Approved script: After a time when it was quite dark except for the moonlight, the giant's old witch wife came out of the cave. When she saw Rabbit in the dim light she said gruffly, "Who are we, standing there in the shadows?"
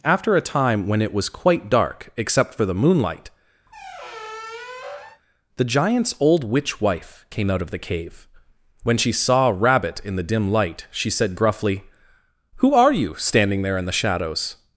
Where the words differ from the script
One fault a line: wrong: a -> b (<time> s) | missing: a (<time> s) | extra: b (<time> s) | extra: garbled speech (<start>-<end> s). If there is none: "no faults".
wrong: we -> you (12.9 s)